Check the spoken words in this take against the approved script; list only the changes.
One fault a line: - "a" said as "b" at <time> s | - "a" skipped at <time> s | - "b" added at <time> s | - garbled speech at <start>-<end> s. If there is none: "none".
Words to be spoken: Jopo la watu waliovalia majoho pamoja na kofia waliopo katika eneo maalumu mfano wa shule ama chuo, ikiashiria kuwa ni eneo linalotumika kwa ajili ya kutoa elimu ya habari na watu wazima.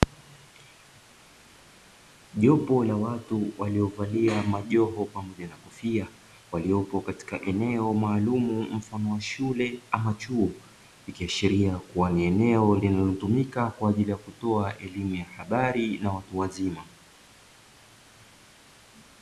none